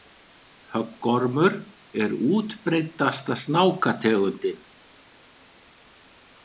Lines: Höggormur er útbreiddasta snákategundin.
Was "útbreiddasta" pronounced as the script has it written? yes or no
yes